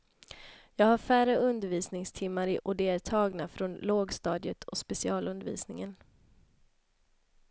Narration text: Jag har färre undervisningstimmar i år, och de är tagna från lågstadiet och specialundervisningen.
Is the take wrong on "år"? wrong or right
wrong